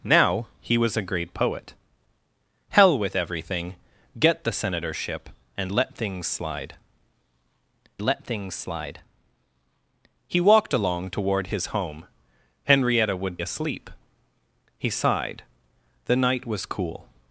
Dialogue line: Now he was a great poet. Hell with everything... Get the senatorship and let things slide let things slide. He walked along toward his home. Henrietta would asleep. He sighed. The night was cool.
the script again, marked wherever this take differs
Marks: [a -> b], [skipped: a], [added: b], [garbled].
Now he was a great poet. Hell with everything... Get the senatorship and let things slide let things slide. He walked along toward his home. Henrietta would asleep. He sighed. The night was cool.